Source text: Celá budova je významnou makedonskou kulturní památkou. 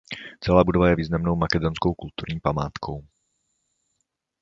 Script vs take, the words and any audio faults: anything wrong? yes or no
no